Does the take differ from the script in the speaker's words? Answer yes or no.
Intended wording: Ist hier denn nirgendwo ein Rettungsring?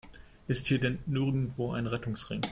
no